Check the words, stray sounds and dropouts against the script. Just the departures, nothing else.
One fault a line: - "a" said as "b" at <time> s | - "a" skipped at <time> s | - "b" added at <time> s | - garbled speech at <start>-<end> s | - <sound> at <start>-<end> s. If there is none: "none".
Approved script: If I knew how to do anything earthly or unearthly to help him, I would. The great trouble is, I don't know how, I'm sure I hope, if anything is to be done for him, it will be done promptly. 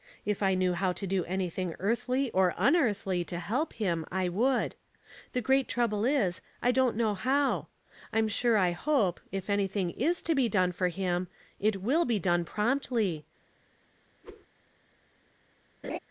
- whoosh at 14.2-14.5 s
- laugh at 15.8-16.0 s